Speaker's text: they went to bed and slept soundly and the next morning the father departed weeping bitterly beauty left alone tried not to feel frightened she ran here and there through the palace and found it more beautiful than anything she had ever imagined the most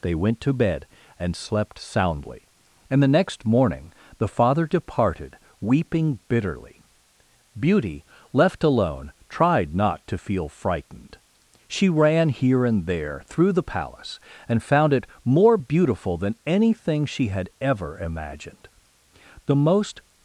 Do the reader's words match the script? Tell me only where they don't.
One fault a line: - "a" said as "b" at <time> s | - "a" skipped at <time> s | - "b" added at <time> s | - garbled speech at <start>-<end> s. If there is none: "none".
none